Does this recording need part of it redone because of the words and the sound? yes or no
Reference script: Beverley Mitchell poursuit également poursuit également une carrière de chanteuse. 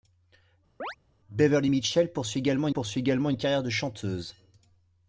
yes